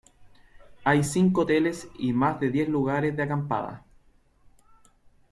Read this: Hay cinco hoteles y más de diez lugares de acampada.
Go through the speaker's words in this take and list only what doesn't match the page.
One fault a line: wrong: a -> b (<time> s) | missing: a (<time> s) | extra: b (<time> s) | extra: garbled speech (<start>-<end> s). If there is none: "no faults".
no faults